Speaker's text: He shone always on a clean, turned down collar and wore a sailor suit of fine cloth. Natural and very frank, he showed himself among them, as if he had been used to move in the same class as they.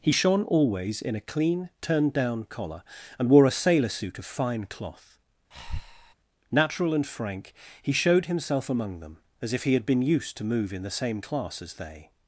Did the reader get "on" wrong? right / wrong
wrong